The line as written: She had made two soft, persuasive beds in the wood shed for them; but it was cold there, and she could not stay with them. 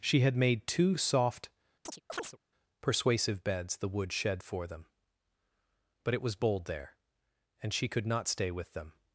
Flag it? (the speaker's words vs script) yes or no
yes